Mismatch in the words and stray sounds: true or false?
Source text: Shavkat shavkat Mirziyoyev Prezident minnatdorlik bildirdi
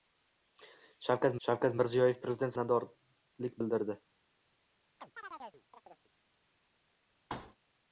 true